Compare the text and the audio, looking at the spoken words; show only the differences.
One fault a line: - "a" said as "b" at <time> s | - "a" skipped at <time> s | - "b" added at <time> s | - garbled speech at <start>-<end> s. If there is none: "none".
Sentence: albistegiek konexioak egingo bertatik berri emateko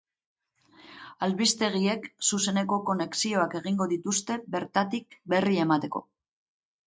- "zuzeneko" added at 2.3 s
- "dituzte" added at 3.9 s